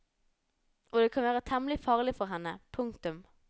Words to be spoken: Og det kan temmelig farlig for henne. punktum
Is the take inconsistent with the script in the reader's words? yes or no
yes